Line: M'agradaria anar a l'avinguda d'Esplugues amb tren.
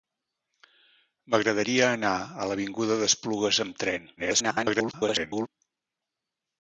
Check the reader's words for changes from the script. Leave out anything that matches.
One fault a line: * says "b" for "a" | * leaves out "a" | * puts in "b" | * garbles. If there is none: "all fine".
* garbles